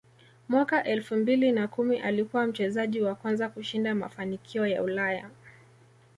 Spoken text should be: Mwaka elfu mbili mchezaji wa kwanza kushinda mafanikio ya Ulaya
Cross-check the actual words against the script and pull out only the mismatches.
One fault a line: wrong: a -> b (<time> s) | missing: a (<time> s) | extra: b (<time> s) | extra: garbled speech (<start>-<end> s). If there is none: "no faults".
extra: na kumi alikuwa (1.5 s)